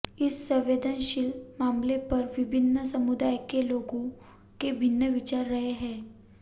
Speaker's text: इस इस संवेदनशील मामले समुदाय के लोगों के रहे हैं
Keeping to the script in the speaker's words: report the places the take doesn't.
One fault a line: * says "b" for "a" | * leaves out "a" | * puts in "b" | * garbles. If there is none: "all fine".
* leaves out "इस"
* puts in "पर विभिन्न"
* puts in "भिन्न विचार"